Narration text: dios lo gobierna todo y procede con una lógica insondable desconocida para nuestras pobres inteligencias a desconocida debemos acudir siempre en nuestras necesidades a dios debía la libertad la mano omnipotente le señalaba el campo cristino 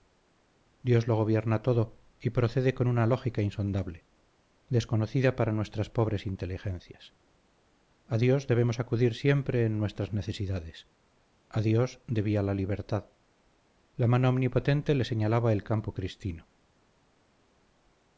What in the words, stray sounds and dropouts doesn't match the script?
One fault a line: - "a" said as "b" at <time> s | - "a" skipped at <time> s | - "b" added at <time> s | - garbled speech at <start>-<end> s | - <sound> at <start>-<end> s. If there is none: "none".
- "desconocida" said as "dios" at 8.2 s